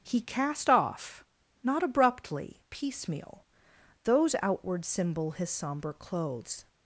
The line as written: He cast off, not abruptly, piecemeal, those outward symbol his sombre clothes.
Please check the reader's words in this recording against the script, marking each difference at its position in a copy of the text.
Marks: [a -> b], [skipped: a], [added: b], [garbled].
He cast off, not abruptly, piecemeal, those outward symbol his sombre clothes.